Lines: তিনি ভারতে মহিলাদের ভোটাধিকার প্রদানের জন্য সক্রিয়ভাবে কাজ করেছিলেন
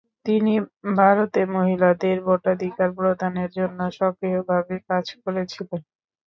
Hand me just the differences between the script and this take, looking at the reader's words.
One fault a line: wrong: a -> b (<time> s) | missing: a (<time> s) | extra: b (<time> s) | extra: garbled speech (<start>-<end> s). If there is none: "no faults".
no faults